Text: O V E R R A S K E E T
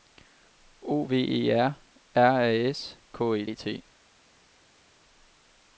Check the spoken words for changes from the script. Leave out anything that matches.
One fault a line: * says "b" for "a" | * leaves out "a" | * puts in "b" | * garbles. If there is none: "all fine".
all fine